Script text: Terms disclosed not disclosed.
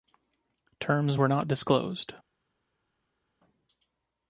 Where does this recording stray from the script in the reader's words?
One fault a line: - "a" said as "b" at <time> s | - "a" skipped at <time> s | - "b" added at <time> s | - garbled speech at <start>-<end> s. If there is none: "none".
- "disclosed" said as "were" at 1.2 s